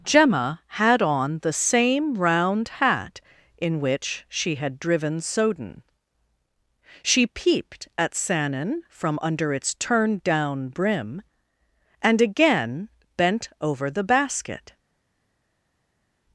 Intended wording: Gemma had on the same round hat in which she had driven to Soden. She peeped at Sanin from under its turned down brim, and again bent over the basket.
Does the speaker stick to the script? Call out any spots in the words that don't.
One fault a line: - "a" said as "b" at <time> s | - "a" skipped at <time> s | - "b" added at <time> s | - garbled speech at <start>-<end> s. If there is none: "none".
- "to" skipped at 5.2 s